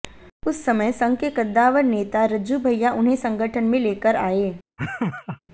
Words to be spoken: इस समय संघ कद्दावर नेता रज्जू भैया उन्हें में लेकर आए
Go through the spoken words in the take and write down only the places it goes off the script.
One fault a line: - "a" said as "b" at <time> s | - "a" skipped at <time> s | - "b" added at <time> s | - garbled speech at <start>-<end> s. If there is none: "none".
- "इस" said as "उस" at 0.5 s
- "के" added at 1.2 s
- "संगठन" added at 3.1 s